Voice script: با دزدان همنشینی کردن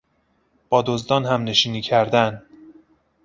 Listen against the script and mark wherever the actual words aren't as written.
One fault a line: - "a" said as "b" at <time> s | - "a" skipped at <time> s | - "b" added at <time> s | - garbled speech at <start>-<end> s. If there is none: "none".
none